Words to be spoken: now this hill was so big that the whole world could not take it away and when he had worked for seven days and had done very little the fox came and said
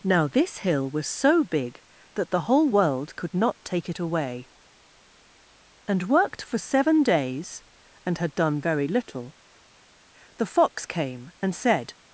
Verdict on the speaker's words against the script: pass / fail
fail